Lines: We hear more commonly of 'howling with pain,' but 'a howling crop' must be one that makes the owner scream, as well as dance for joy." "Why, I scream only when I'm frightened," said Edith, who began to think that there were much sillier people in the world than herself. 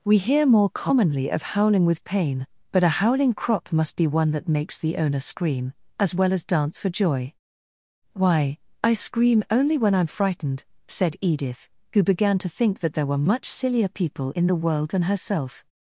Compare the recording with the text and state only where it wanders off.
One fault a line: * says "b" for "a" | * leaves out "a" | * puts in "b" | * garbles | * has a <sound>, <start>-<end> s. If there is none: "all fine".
all fine